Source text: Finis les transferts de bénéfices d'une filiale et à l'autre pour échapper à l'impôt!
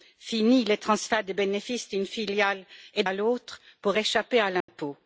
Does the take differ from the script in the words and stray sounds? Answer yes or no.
yes